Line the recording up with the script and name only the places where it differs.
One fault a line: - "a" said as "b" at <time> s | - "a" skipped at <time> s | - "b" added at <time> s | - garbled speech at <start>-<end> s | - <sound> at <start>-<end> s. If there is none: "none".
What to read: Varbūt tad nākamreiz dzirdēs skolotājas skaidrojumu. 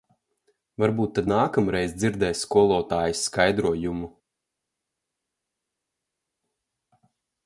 none